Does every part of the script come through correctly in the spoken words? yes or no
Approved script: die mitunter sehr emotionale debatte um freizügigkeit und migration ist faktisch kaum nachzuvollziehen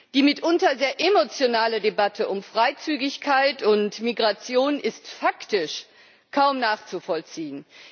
yes